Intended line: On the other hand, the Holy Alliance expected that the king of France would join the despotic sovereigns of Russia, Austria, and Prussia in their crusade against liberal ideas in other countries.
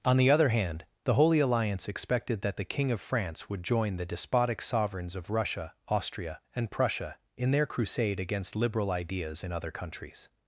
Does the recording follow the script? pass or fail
pass